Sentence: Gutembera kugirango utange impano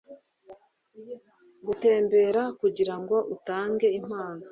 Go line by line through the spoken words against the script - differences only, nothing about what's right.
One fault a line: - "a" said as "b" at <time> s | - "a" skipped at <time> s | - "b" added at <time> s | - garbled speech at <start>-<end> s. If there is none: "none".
none